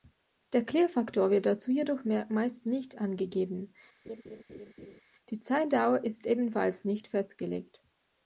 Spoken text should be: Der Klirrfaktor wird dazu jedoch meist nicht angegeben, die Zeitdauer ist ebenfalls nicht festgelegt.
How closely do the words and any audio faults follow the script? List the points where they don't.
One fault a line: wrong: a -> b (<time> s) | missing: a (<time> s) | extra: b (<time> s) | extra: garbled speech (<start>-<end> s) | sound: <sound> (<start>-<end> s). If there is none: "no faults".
sound: laugh (4.0-5.0 s)